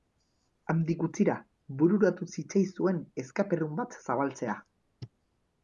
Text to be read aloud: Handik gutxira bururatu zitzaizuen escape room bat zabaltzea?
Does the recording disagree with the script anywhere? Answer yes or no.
no